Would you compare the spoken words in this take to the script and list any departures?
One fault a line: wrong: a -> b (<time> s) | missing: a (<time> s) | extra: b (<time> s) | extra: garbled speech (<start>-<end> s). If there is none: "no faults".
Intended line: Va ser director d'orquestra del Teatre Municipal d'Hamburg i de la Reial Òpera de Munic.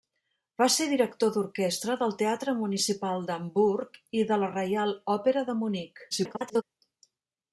extra: garbled speech (6.1-6.6 s)